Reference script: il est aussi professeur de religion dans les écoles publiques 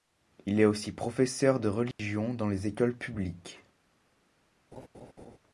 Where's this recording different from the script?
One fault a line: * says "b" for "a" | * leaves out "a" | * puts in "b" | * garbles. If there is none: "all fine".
all fine